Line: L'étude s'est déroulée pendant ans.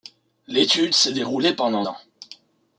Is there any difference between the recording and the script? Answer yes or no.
no